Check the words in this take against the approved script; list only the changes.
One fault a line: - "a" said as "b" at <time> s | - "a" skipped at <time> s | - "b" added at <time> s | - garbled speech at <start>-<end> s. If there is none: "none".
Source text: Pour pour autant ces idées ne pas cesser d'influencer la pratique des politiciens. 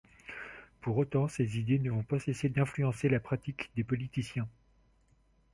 - "pour" skipped at 1.0 s
- "vont" added at 1.9 s